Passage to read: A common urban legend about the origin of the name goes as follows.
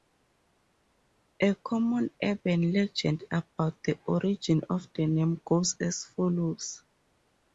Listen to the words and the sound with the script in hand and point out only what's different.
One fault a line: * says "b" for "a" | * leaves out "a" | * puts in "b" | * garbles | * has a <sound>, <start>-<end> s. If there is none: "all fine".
all fine